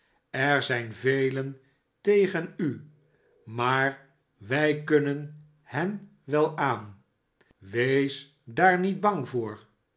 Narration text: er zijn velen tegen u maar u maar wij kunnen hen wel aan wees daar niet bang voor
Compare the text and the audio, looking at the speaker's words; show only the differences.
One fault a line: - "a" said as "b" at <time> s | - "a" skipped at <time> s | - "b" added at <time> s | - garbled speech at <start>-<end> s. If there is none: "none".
- "u maar" skipped at 4.1 s